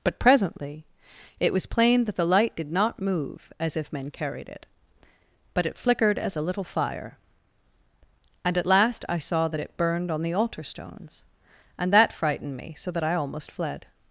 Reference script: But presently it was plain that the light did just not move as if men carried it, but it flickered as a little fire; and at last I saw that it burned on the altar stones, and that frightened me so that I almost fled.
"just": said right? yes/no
no